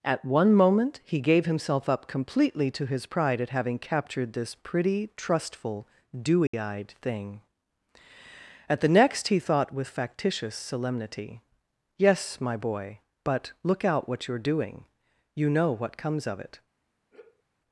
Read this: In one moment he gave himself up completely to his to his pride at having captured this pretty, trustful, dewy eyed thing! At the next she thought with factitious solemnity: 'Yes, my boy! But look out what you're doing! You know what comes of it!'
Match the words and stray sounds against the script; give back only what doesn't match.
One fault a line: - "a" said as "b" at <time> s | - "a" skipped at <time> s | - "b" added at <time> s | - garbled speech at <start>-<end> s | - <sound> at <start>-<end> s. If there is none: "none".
- "In" said as "At" at 0.0 s
- "to his" skipped at 3.0 s
- dropout at 6.5-6.5 s
- "she" said as "he" at 9.3 s
- sigh at 17.1-17.4 s